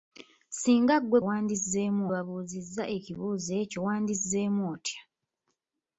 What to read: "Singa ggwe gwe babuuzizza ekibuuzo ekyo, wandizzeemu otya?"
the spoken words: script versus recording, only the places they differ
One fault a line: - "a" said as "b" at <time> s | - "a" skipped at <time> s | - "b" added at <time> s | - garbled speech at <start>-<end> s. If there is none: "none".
- "gwe" said as "wandizzeemu" at 1.3 s